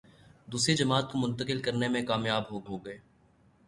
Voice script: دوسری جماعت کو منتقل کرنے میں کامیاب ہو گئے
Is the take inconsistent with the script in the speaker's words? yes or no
yes